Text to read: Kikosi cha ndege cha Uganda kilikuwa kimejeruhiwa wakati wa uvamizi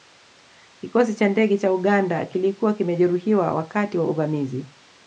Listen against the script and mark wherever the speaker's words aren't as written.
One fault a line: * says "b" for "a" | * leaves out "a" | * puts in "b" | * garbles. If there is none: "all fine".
all fine